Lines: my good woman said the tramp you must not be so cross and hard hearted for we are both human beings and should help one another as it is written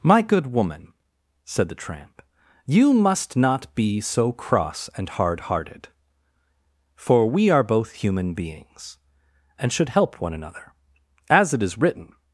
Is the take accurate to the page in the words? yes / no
yes